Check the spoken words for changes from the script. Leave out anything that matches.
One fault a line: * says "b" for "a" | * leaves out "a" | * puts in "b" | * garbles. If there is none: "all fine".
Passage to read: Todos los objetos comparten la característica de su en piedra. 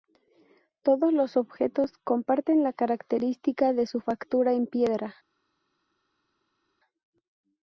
* puts in "factura"